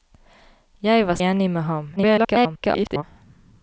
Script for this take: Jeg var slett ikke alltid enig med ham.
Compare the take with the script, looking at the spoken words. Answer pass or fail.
fail